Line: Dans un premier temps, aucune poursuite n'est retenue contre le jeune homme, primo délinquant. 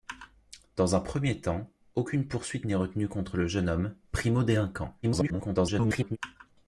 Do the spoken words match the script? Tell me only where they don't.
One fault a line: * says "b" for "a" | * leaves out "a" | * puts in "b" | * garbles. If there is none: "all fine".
* garbles